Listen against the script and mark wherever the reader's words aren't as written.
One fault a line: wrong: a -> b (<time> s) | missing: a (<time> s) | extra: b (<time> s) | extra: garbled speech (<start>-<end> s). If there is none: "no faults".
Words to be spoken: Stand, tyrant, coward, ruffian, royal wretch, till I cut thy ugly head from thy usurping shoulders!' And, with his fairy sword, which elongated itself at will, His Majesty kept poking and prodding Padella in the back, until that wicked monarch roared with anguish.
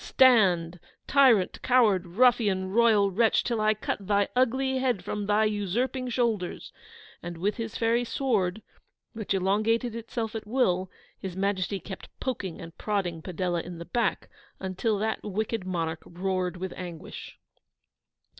no faults